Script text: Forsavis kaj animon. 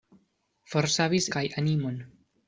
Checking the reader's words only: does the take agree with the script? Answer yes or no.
yes